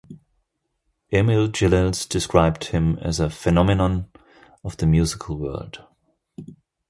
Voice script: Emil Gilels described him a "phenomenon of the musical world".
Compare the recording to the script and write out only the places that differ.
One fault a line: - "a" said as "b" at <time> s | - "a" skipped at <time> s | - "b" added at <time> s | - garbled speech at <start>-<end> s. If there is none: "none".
- "as" added at 3.0 s